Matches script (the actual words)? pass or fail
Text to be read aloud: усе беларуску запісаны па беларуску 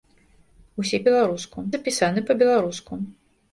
pass